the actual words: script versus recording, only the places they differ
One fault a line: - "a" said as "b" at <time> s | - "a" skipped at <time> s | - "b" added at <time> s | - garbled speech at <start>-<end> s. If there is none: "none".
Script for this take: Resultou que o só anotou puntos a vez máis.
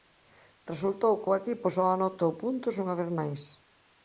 - "equipo" added at 1.4 s
- "a" said as "unha" at 2.8 s